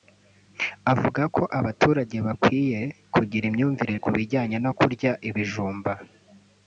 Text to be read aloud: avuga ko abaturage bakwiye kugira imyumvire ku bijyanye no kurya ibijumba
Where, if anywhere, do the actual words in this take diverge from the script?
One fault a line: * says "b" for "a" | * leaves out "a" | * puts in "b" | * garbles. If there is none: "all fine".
all fine